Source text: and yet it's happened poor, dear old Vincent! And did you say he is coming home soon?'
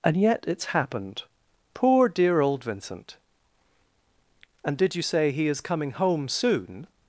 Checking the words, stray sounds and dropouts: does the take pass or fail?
pass